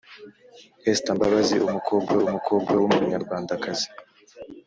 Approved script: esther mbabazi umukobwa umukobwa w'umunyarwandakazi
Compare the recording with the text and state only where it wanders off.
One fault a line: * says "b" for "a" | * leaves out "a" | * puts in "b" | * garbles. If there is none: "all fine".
all fine